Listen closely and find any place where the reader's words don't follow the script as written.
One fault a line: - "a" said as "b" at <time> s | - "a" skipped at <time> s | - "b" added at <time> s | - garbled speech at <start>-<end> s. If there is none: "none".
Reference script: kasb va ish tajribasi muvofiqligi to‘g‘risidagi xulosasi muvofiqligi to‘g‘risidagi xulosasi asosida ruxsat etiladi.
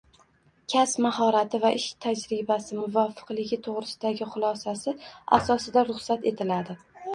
- "mahorati" added at 1.1 s
- "muvofiqligi to‘g‘risidagi xulosasi" skipped at 5.0 s